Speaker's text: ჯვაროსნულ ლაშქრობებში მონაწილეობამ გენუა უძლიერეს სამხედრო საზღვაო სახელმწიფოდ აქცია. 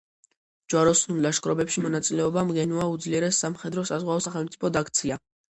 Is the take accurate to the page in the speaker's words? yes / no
yes